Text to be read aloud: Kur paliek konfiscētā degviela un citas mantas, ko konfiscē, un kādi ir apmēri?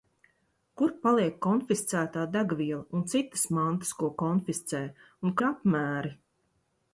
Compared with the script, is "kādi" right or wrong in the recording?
wrong